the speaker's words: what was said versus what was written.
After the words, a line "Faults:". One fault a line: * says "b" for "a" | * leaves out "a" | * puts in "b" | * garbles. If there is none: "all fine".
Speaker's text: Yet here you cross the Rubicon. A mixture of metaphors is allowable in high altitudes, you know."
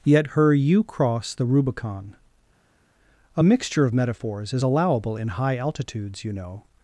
Yet her you cross the Rubicon. A mixture of metaphors is allowable in high altitudes, you know."
Faults:
* says "her" for "here"